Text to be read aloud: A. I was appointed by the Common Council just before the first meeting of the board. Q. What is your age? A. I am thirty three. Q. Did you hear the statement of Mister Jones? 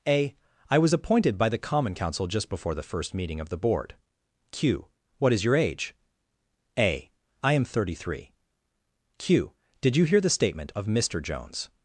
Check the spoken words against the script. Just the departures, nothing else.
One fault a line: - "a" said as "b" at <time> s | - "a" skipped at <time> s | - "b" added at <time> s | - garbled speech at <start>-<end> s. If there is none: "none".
none